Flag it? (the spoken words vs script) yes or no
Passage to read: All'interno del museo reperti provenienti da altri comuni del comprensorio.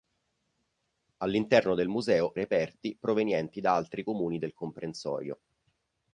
no